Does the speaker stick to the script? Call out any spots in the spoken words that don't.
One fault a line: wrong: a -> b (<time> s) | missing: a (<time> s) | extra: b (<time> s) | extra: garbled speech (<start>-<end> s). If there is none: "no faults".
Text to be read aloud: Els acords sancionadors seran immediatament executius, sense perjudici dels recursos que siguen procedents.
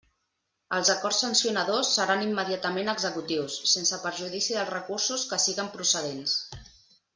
no faults